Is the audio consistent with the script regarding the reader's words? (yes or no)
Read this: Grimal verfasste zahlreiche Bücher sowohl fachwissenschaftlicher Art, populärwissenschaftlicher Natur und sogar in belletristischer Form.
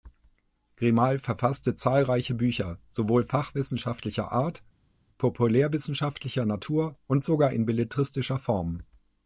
yes